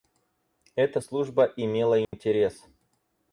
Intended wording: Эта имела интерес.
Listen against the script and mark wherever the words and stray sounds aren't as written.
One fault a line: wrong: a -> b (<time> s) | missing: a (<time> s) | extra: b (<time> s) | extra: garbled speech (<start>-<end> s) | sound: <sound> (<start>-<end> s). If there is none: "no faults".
extra: служба (1.0 s)
sound: dropout (2.0-2.1 s)